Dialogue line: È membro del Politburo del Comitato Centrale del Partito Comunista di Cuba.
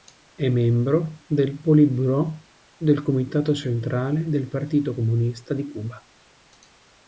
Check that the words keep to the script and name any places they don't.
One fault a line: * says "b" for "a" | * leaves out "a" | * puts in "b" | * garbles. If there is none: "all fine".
all fine